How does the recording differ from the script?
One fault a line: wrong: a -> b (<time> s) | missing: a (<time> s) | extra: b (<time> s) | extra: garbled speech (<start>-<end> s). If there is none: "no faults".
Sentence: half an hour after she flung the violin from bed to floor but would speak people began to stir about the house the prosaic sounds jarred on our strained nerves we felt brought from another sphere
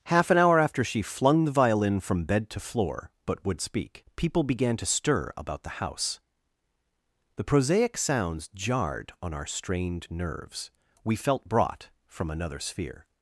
no faults